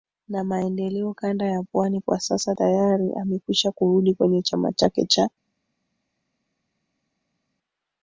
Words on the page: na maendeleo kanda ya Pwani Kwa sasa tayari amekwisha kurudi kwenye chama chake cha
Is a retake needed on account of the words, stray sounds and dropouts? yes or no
no